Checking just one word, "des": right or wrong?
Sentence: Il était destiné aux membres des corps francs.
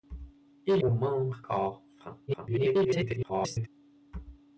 wrong